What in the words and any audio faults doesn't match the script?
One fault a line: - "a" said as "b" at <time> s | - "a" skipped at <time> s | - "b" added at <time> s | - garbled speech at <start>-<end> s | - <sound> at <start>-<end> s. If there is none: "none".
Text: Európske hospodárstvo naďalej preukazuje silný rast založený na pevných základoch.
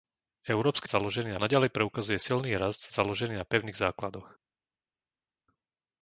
- "hospodárstvo" said as "založený" at 0.9 s